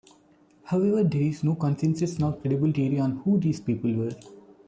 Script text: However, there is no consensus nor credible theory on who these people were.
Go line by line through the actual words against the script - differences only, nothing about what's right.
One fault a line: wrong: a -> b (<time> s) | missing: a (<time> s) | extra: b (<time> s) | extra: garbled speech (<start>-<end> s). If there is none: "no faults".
no faults